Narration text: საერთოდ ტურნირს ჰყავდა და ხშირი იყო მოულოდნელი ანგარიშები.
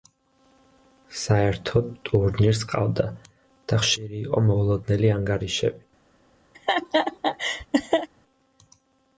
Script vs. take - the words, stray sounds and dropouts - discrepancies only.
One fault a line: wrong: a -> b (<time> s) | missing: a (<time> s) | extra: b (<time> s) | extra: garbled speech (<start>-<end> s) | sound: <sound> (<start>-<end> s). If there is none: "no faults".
sound: laugh (6.5-8.1 s)